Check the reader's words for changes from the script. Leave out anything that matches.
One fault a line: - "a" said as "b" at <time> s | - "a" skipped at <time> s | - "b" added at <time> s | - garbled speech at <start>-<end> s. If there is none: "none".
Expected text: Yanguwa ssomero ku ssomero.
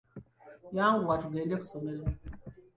- "ssomero" said as "tugende" at 1.2 s